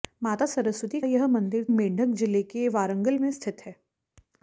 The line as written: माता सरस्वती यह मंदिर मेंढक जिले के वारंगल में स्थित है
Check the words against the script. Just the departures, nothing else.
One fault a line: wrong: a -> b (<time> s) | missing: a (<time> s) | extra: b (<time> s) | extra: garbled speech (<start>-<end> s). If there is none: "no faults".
no faults